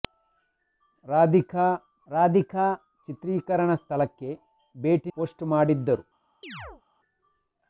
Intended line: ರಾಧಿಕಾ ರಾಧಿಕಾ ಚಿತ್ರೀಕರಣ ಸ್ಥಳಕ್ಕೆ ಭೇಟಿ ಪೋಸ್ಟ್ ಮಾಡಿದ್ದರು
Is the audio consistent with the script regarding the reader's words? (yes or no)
yes